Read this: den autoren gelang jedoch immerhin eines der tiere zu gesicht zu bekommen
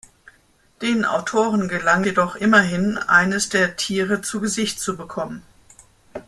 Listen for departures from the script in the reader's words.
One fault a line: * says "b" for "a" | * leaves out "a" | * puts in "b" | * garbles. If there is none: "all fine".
all fine